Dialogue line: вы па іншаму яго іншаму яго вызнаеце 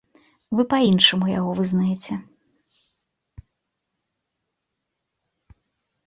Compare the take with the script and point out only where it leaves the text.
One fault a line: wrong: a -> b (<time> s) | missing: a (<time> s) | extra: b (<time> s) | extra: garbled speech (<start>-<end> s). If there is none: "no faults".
missing: іншаму яго (1.5 s)